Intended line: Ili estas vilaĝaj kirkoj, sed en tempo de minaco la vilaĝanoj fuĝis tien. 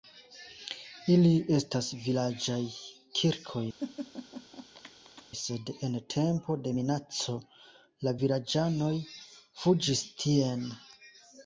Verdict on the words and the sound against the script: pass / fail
fail